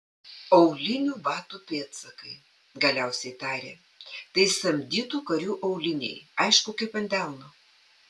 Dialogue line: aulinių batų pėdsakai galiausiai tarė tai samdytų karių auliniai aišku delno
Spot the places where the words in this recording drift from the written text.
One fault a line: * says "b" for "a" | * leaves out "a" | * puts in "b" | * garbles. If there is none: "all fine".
* puts in "kaip ant"